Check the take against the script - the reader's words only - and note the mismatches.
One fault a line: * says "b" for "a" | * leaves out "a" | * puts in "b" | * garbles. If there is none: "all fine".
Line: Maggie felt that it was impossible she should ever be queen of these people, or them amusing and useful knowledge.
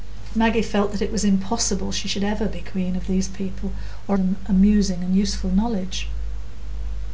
all fine